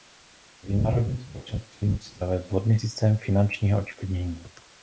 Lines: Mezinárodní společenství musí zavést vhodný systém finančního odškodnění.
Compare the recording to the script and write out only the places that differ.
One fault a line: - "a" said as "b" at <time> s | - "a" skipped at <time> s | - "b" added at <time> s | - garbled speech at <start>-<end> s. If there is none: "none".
none